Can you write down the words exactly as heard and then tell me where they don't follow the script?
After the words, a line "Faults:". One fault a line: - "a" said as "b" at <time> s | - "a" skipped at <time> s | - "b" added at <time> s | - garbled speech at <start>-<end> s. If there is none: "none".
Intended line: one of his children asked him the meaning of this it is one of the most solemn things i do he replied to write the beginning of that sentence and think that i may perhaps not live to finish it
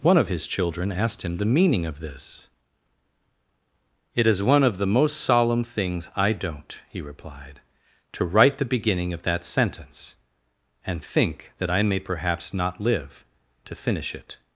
one of his children asked him the meaning of this it is one of the most solemn things i don't he replied to write the beginning of that sentence and think that i may perhaps not live to finish it
Faults:
- "do" said as "don't" at 6.3 s